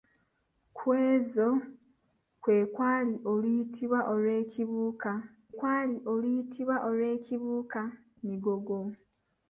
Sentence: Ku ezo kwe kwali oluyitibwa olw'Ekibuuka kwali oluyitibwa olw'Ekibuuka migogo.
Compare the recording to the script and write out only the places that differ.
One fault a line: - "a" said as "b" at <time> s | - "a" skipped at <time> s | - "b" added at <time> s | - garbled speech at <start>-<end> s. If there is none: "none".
none